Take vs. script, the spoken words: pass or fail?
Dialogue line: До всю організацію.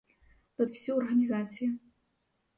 pass